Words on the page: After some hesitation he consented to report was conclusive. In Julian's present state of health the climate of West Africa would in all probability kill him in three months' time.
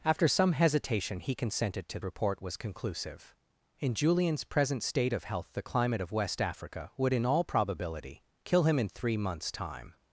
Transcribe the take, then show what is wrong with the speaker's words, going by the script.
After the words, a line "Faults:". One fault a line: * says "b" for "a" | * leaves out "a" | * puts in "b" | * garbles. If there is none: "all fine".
After some hesitation he consented to report was conclusive. In Julian's present state of health the climate of West Africa would in all probability kill him in three months' time.
Faults:
all fine